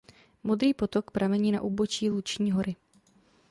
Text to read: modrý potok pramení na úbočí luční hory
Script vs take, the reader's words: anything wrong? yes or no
no